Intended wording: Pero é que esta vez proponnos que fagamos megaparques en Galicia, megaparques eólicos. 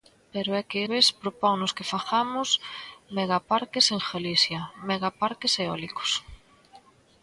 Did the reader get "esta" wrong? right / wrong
wrong